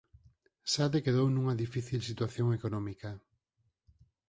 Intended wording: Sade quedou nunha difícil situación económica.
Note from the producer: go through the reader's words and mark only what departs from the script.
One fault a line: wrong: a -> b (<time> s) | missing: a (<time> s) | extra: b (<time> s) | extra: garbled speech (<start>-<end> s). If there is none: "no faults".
no faults